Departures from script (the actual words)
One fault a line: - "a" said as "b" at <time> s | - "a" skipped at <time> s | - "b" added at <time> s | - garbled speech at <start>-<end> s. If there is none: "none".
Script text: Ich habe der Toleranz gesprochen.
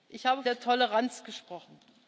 none